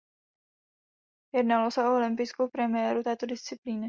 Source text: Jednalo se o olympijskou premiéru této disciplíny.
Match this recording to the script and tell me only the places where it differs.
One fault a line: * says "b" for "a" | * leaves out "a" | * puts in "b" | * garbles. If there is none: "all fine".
all fine